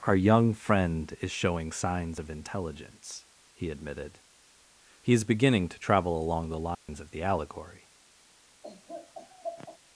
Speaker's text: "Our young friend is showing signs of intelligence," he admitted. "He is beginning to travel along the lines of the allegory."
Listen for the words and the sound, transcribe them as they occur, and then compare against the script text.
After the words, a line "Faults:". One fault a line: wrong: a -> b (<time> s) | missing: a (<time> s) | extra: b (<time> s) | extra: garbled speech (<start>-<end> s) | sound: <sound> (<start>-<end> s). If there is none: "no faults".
"Our young friend is showing signs of intelligence," he admitted. "He is beginning to travel along the lines of the allegory."
Faults:
sound: dropout (6.7-6.9 s)
sound: laugh (8.6-9.8 s)